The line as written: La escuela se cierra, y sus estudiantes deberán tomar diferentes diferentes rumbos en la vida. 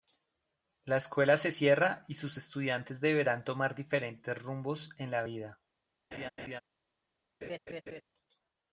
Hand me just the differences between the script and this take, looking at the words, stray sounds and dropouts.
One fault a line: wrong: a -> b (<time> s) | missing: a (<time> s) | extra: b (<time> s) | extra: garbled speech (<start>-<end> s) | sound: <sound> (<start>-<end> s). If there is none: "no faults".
missing: diferentes (4.4 s)
sound: laugh (6.1-6.6 s)
sound: laugh (7.4-8.0 s)